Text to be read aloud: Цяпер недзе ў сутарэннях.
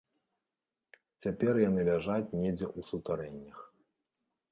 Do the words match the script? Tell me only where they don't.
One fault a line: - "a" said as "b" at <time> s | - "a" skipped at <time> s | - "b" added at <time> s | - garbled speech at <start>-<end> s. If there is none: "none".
- "яны ляжаць" added at 1.7 s